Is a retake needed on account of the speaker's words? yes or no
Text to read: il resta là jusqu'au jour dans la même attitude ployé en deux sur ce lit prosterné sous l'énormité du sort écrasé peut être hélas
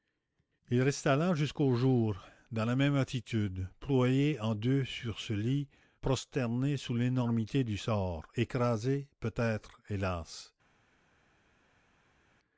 no